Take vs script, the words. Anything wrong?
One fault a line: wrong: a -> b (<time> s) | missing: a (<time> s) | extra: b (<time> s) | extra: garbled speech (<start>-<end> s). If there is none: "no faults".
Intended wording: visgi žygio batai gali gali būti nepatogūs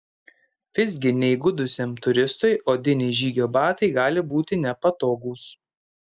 extra: neįgudusiam turistui odiniai (1.2 s)
missing: gali (4.2 s)